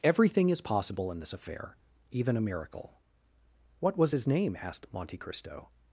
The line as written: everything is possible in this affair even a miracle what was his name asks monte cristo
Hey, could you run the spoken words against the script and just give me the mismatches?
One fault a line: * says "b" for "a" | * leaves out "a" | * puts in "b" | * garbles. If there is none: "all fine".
* says "asked" for "asks"